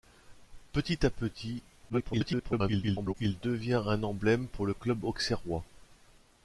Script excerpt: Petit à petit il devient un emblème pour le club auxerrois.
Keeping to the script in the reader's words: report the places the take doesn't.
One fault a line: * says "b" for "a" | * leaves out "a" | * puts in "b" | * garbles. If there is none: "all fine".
* garbles